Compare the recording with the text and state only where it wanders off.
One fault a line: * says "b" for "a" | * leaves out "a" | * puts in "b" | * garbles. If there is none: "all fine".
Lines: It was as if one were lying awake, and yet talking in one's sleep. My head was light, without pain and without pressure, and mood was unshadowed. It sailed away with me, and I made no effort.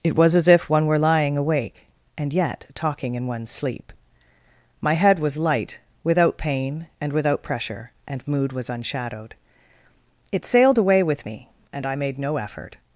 all fine